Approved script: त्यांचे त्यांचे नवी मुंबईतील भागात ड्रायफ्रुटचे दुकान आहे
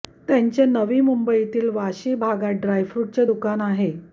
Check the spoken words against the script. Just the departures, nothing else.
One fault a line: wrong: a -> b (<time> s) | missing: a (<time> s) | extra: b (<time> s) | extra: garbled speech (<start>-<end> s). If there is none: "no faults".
missing: त्यांचे (0.7 s)
extra: वाशी (1.7 s)